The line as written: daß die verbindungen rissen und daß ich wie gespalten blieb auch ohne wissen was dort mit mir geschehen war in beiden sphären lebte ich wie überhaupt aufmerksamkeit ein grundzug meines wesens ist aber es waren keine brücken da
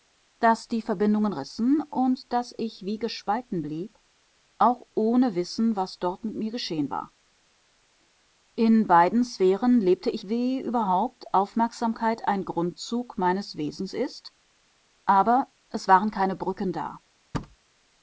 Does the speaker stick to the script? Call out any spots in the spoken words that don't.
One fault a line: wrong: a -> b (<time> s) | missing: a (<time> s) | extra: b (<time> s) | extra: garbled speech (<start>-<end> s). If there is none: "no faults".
no faults